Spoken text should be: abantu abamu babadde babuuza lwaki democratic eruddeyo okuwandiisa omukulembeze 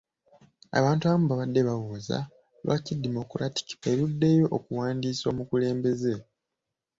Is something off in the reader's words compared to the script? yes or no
no